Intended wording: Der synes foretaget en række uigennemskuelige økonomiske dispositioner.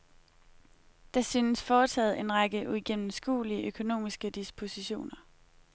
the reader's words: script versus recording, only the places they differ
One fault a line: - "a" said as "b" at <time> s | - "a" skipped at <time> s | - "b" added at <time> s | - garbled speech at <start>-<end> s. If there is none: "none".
none